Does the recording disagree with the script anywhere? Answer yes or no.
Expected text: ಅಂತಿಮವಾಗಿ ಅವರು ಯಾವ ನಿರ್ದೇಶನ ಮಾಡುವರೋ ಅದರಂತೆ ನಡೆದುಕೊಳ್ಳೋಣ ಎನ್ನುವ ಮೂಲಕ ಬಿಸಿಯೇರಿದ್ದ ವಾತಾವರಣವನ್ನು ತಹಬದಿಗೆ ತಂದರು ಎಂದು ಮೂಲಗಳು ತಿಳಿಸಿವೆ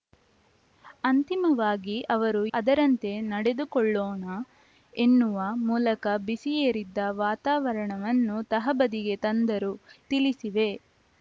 yes